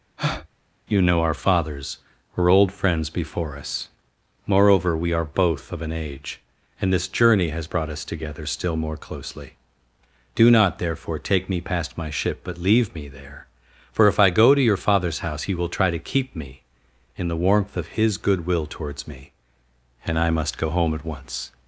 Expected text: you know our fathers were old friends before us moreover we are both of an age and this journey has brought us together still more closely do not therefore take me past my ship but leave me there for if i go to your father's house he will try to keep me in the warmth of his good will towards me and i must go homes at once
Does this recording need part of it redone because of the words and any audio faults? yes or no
yes